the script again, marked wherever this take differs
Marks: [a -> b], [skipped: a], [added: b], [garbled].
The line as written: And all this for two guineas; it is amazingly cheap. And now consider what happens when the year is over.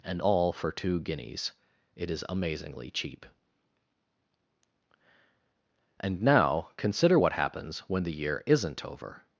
And all [skipped: this] for two guineas; it is amazingly cheap. And now consider what happens when the year [is -> isn't] over.